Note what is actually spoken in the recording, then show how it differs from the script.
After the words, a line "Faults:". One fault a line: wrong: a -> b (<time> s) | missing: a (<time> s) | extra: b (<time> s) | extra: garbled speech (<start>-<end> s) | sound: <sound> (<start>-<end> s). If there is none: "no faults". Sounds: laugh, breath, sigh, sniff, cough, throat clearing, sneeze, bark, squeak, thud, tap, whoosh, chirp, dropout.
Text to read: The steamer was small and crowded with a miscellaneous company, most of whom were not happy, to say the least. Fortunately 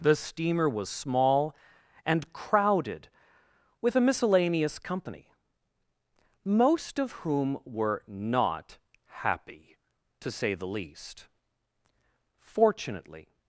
The steamer was small and crowded with a miscellaneous company, most of whom were not happy, to say the least. Fortunately
Faults:
no faults